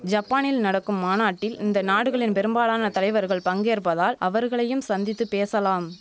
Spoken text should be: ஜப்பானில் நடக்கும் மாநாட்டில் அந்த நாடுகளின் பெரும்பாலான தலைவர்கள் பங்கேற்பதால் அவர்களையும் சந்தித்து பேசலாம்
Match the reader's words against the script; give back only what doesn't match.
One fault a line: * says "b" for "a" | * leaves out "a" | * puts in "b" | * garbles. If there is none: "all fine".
* says "இந்த" for "அந்த"